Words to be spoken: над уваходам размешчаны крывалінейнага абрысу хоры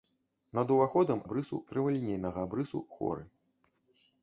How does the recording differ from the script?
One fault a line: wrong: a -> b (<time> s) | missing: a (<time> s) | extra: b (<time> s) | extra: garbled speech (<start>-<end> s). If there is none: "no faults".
wrong: размешчаны -> абрысу (1.3 s)